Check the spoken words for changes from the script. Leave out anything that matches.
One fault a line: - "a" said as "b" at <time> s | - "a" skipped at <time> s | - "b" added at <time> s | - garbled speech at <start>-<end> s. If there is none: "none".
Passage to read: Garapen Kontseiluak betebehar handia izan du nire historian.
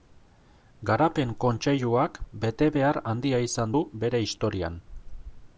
- "nire" said as "bere" at 4.0 s